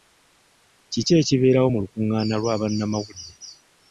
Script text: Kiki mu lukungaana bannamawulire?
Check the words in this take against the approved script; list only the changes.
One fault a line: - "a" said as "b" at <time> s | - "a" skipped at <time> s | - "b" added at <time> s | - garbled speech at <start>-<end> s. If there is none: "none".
- "ekibeerawo" added at 1.2 s
- "lwa" added at 2.4 s